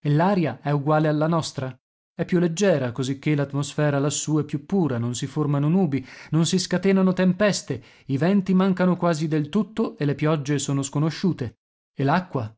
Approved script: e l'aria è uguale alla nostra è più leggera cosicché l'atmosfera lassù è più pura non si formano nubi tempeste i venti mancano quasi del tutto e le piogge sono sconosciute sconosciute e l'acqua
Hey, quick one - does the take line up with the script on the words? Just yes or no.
no